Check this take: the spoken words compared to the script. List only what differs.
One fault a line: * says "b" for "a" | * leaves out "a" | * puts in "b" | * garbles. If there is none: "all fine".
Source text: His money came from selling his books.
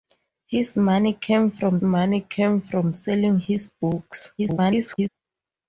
* puts in "money came from"
* garbles